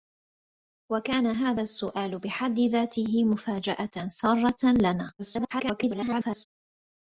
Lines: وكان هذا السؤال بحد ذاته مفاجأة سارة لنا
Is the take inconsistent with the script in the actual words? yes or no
yes